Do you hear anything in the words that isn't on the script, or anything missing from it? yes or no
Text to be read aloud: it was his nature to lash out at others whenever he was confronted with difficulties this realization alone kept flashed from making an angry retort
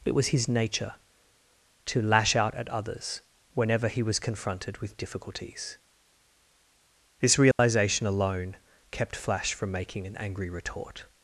yes